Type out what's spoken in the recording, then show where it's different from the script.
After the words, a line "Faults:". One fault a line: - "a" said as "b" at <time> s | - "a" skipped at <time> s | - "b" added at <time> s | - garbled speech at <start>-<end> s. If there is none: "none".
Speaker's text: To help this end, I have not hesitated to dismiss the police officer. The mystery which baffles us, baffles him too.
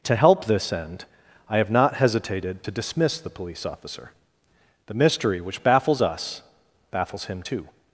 To help this end, I have not hesitated to dismiss the police officer. The mystery which baffles us, baffles him too.
Faults:
none